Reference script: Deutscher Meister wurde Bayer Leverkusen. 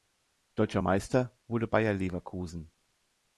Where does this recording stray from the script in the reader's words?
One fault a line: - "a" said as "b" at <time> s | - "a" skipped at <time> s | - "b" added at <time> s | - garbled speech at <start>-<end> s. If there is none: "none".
none